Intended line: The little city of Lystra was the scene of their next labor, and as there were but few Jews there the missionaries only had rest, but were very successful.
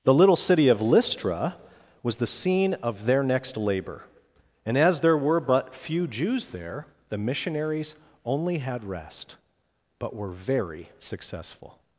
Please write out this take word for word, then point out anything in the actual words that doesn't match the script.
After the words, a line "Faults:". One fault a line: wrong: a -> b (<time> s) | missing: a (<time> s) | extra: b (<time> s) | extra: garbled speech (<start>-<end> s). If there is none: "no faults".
The little city of Lystra was the scene of their next labor, and as there were but few Jews there the missionaries only had rest, but were very successful.
Faults:
no faults